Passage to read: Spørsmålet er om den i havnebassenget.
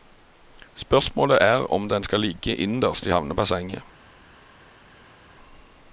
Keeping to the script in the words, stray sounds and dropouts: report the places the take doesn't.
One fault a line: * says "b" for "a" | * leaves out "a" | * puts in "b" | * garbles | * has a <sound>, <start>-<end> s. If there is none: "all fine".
* puts in "skal ligge innerst"